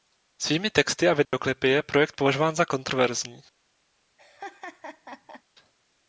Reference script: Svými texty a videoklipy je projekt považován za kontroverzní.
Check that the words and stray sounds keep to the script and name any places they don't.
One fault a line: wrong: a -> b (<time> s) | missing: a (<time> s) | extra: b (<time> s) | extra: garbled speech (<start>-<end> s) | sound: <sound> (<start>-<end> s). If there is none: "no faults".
sound: dropout (1.2-1.3 s)
sound: laugh (4.2-5.4 s)